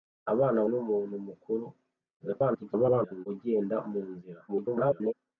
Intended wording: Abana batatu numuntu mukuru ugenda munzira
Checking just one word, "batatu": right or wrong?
wrong